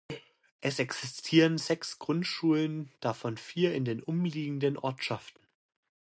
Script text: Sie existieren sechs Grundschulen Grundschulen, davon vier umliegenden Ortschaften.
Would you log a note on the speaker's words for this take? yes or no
yes